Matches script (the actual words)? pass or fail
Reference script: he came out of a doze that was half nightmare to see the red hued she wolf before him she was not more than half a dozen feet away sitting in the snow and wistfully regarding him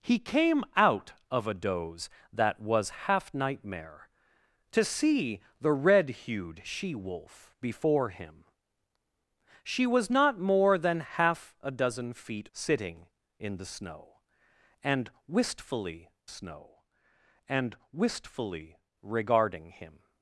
fail